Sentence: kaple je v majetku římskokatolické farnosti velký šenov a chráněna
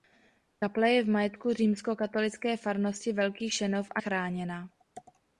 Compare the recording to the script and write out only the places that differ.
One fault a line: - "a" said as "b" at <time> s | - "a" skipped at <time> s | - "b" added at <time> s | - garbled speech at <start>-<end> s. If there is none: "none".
none